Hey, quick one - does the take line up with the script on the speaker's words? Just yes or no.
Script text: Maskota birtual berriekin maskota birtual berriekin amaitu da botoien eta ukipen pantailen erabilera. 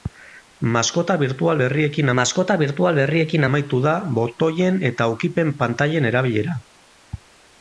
yes